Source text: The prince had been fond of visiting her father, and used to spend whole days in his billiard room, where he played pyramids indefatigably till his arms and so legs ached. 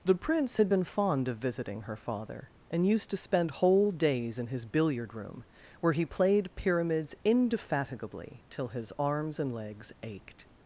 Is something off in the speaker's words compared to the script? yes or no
yes